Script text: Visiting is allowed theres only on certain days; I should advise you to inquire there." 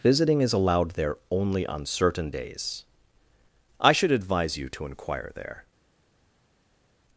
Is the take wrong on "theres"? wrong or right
wrong